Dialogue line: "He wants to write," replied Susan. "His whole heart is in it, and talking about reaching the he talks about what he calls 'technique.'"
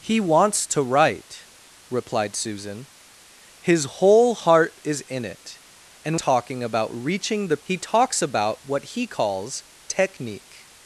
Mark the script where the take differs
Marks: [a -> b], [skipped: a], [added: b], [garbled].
"He wants to write," replied Susan. "His whole heart is in it, and talking about reaching the he talks about what he calls 'technique.'"